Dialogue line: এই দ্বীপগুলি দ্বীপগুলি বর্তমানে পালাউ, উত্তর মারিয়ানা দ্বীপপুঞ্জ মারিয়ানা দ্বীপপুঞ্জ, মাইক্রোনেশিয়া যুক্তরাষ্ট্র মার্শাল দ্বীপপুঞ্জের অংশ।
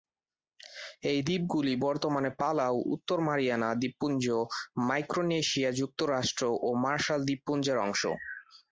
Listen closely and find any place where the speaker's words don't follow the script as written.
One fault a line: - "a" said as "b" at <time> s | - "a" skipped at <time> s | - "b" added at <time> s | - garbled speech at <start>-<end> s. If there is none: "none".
- "দ্বীপগুলি" skipped at 1.7 s
- "মারিয়ানা দ্বীপপুঞ্জ" skipped at 4.2 s
- "ও" added at 6.6 s